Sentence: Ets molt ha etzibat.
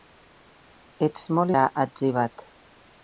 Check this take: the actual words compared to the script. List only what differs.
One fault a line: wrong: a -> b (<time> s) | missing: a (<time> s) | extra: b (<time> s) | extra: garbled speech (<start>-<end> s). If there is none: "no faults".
no faults